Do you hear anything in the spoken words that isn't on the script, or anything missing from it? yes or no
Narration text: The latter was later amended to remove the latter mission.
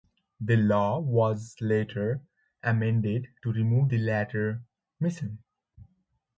yes